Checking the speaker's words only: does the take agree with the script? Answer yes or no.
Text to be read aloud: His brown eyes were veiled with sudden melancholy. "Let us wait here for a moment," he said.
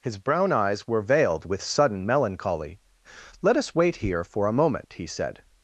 yes